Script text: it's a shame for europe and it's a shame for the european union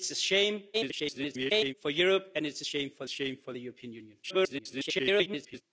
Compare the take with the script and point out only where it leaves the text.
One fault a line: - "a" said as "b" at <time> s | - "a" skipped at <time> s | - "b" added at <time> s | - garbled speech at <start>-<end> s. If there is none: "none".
- garbled speech at 0.7-1.7 s
- "shame for" added at 3.1 s
- garbled speech at 4.2-5.6 s